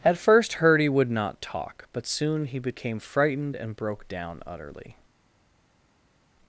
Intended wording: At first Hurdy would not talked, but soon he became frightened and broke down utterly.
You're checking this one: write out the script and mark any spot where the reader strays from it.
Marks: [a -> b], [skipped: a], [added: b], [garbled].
At first Hurdy would not [talked, -> talk] but soon he became frightened and broke down utterly.